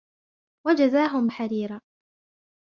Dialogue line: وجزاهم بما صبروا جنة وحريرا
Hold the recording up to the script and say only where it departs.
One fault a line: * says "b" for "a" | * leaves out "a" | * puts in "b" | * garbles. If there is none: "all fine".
* leaves out "بما صبروا جنة"